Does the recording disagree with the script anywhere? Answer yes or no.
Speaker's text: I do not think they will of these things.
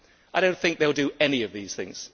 yes